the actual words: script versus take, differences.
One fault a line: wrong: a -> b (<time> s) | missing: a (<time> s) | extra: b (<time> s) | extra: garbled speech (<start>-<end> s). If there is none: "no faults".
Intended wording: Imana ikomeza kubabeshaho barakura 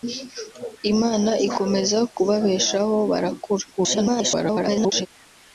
extra: garbled speech (3.7-5.1 s)